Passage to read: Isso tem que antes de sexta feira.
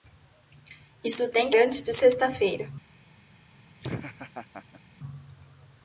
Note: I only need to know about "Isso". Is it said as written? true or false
true